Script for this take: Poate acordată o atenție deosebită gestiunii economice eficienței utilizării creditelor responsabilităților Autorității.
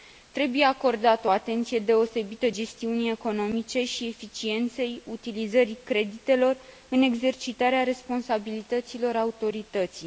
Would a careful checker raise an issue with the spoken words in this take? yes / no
yes